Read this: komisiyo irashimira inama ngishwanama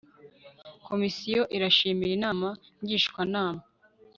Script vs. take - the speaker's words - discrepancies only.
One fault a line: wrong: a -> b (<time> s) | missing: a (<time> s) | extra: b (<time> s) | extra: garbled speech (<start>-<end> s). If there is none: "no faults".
no faults